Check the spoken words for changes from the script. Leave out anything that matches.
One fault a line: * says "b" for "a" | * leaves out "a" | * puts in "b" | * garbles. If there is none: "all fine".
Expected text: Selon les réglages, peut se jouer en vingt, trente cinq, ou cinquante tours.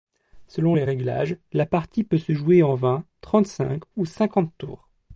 * puts in "la partie"